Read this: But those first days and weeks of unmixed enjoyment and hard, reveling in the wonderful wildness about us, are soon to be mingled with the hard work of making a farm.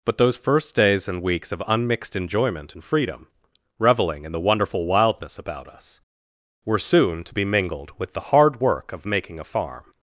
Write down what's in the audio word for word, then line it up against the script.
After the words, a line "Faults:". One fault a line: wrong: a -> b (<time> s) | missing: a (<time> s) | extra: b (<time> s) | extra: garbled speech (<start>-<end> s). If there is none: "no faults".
But those first days and weeks of unmixed enjoyment and freedom, reveling in the wonderful wildness about us, were soon to be mingled with the hard work of making a farm.
Faults:
wrong: hard -> freedom (2.8 s)
wrong: are -> were (6.7 s)